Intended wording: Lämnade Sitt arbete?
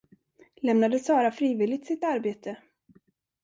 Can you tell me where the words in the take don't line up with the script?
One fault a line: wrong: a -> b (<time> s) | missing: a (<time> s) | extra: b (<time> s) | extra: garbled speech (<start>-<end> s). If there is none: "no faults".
extra: Sara frivilligt (1.0 s)